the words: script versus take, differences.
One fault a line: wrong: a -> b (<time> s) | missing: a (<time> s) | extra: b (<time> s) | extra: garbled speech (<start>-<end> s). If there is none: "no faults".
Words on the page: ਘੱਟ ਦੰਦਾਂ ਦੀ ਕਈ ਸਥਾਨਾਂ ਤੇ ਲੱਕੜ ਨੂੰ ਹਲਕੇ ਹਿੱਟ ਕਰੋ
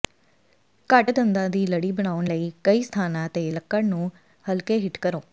extra: ਲੜੀ ਬਣਾਉਣ ਲਈ (1.7 s)